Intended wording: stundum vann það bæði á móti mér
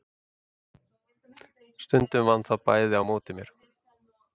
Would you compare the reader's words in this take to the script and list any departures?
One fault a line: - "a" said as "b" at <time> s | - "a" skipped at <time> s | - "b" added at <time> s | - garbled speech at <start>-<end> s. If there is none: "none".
none